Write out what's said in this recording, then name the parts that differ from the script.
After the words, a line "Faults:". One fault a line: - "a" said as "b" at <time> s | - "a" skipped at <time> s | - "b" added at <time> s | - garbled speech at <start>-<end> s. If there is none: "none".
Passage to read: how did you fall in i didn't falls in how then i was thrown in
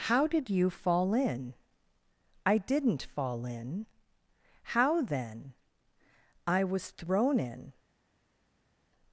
how did you fall in i didn't fall in how then i was thrown in
Faults:
- "falls" said as "fall" at 3.0 s